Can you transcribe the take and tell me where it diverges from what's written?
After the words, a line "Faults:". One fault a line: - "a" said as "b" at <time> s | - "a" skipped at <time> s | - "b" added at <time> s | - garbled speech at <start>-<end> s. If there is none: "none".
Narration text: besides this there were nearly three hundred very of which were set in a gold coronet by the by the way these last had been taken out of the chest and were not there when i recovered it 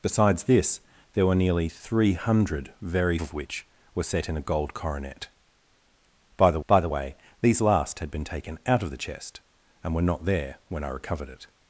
besides this there were nearly three hundred very of which were set in a gold coronet by the by the way these last had been taken out of the chest and were not there when i recovered it
Faults:
none